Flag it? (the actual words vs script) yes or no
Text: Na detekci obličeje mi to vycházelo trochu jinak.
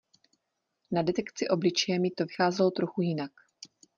no